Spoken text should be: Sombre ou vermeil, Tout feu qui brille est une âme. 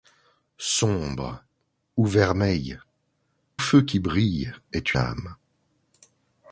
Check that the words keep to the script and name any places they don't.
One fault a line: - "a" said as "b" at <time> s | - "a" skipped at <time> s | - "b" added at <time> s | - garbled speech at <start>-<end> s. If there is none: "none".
- "Tout" skipped at 2.8 s
- "une" skipped at 4.9 s